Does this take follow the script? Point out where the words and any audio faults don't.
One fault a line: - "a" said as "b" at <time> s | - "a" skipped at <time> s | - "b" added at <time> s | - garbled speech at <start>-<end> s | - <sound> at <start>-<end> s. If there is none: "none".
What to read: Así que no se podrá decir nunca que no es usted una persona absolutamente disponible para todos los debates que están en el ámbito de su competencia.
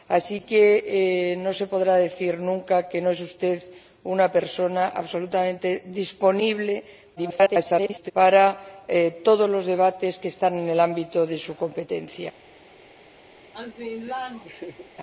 - garbled speech at 7.2-8.1 s
- laugh at 13.5-14.9 s